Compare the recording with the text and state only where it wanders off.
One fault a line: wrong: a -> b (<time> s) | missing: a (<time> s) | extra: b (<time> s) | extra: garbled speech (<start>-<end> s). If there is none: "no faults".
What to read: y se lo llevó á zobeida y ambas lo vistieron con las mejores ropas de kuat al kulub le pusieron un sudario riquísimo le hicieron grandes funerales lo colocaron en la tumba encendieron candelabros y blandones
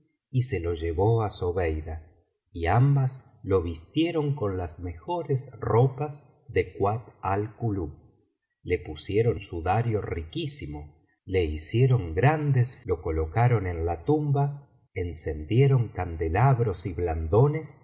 missing: un (9.4 s)
missing: funerales (12.8 s)